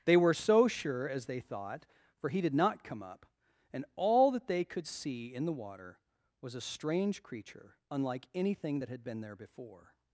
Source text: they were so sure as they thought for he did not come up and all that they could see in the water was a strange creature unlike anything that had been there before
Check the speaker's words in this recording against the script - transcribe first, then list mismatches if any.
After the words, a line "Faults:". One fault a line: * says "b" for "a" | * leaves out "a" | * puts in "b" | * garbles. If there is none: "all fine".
they were so sure as they thought for he did not come up and all that they could see in the water was a strange creature unlike anything that had been there before
Faults:
all fine